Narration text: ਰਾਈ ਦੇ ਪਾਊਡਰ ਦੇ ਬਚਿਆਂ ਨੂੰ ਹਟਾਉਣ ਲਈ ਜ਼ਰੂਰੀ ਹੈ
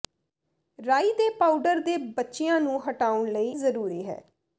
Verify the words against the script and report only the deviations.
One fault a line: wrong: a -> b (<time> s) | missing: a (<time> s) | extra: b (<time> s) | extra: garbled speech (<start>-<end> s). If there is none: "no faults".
no faults